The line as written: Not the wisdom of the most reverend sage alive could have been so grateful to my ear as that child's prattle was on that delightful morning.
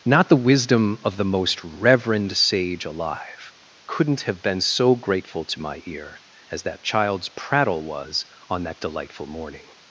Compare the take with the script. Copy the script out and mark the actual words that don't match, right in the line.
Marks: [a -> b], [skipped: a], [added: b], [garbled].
Not the wisdom of the most reverend sage alive [could -> couldn't] have been so grateful to my ear as that child's prattle was on that delightful morning.